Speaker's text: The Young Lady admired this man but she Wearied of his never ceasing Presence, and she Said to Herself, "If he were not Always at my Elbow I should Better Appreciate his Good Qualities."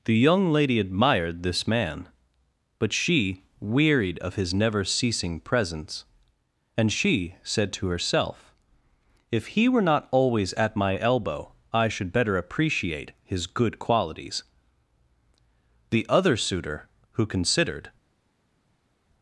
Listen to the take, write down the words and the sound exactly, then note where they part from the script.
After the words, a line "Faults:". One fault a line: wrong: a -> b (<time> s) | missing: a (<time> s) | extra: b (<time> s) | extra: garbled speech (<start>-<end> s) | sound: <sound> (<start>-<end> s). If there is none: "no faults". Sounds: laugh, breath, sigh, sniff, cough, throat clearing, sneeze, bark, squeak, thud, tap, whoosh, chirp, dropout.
The Young Lady admired this man but she Wearied of his never ceasing Presence, and she Said to Herself, "If he were not Always at my Elbow I should Better Appreciate his Good Qualities." The Other Suitor, who considered
Faults:
extra: The Other Suitor who considered (15.9 s)